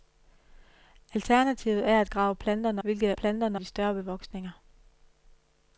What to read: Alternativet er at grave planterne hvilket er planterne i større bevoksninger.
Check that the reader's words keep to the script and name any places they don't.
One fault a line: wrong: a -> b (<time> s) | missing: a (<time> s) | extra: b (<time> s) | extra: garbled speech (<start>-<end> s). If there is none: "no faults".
no faults